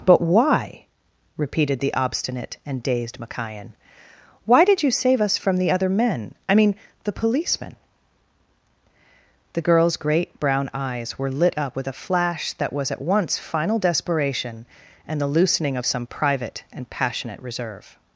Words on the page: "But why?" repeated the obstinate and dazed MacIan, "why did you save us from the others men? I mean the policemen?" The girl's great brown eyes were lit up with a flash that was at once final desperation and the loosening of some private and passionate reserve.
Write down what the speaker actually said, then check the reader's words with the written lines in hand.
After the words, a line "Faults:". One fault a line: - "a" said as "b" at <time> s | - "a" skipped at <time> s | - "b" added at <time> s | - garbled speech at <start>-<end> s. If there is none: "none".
"But why?" repeated the obstinate and dazed MacIan, "why did you save us from the other men? I mean the policemen?" The girl's great brown eyes were lit up with a flash that was at once final desperation and the loosening of some private and passionate reserve.
Faults:
- "others" said as "other" at 5.7 s